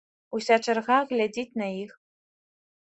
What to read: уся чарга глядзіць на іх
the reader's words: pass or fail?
pass